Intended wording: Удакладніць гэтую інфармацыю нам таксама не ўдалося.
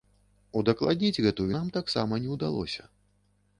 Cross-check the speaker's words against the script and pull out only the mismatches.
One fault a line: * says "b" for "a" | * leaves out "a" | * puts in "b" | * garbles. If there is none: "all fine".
* leaves out "інфармацыю"